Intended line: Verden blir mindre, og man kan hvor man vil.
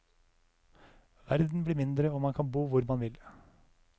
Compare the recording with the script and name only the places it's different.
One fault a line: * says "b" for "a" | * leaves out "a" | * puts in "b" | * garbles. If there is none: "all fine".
* puts in "bo"